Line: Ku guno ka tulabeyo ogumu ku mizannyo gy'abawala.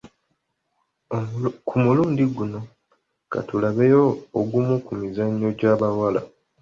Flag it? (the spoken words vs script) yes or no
yes